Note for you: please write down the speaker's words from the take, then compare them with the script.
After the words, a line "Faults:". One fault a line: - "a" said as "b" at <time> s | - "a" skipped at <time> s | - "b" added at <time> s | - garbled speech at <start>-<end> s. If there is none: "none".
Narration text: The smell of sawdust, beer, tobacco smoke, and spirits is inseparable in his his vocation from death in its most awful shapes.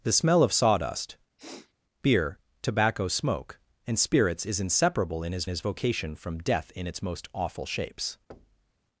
The smell of sawdust, beer, tobacco smoke, and spirits is inseparable in his his vocation from death in its most awful shapes.
Faults:
none